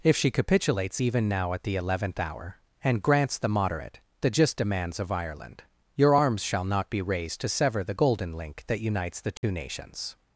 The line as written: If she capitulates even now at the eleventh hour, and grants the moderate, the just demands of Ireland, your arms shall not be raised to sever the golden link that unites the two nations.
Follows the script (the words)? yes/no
yes